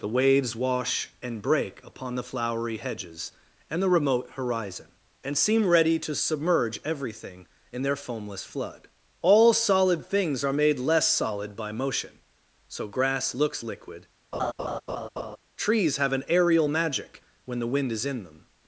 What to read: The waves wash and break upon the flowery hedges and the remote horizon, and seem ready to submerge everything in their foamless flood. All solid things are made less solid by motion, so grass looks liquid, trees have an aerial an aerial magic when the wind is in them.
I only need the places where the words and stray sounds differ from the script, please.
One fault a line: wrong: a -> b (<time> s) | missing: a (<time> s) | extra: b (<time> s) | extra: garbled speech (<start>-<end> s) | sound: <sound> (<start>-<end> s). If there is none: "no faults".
sound: laugh (14.3-15.4 s)
missing: an aerial (16.7 s)